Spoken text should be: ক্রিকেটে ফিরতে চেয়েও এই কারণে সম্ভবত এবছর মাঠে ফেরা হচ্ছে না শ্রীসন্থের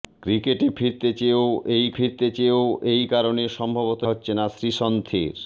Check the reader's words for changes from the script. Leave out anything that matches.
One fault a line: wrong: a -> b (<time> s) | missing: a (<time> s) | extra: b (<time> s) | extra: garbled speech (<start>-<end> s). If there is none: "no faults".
wrong: কারণে সম্ভবত এবছর মাঠে ফেরা -> ফিরতে চেয়েও এই কারণে সম্ভবত (2.0 s)